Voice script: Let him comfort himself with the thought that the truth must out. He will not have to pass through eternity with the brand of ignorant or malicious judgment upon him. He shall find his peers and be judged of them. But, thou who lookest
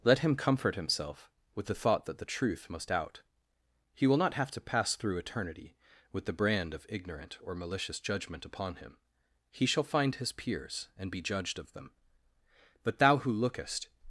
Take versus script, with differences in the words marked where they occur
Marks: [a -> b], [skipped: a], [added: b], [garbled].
Let him comfort himself with the thought that the truth must out. He will not have to pass through eternity with the brand of ignorant or malicious judgment upon him. He shall find his peers and be judged of them. But, thou who lookest